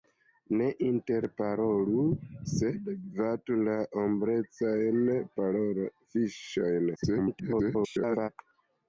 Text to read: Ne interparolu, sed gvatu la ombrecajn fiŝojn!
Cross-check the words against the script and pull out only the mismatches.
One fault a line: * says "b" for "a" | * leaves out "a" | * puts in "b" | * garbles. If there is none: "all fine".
* garbles